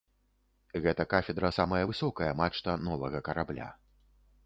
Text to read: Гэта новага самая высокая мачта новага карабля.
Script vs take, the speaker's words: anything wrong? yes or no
yes